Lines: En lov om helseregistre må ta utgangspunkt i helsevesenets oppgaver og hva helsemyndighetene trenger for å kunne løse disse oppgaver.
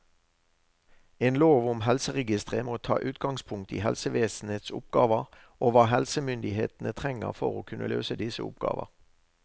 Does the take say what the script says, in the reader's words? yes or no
yes